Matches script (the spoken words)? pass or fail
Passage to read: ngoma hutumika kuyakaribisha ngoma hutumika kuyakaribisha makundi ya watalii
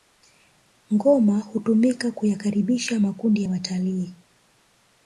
fail